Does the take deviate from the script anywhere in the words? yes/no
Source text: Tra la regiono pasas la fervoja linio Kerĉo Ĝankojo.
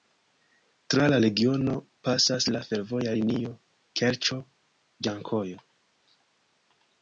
no